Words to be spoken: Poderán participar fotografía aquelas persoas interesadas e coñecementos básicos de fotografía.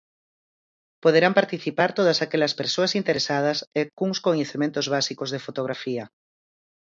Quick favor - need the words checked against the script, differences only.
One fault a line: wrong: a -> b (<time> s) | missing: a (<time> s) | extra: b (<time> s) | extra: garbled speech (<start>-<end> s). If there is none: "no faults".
wrong: fotografía -> todas (2.0 s)
extra: cuns (4.0 s)